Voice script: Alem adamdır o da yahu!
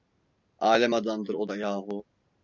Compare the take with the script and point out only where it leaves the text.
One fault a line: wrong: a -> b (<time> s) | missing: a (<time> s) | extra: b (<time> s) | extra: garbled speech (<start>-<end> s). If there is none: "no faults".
no faults